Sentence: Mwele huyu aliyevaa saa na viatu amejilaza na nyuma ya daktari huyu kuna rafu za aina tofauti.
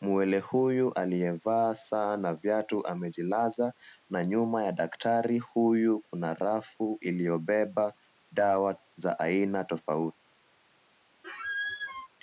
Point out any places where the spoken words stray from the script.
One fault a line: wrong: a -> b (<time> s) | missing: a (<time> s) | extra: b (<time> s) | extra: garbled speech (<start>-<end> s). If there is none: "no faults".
extra: iliyobeba dawa (7.0 s)